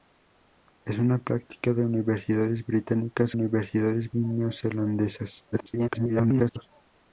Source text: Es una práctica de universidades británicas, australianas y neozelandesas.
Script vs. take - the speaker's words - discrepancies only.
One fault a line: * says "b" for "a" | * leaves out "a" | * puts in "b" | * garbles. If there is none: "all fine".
* says "universidades" for "australianas"
* garbles